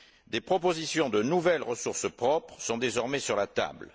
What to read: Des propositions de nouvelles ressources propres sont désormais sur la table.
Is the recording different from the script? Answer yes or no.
no